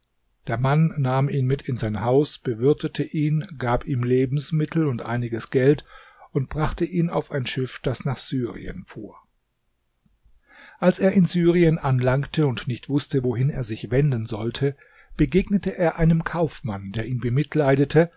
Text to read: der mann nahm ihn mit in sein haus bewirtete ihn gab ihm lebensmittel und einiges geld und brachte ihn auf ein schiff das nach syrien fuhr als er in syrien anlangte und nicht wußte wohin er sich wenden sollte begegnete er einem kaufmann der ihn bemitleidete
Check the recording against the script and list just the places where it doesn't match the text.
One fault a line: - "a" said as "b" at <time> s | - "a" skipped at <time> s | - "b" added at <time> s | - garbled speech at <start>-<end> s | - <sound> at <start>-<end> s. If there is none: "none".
none